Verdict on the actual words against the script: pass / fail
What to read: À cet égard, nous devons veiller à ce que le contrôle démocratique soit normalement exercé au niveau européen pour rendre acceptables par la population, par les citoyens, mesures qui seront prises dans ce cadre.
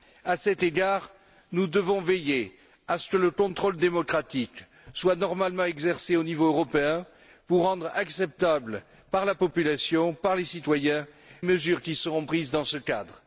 pass